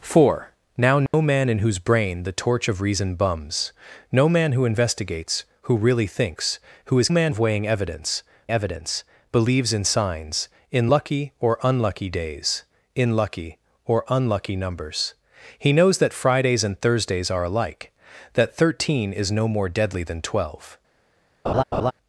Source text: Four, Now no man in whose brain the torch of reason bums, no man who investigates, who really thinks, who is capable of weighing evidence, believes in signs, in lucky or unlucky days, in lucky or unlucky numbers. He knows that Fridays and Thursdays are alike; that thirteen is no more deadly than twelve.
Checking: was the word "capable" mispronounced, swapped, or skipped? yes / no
yes